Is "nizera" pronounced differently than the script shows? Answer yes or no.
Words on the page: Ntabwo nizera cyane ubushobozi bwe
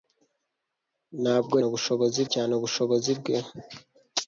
yes